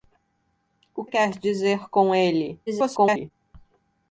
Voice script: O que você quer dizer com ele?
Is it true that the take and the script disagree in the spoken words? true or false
true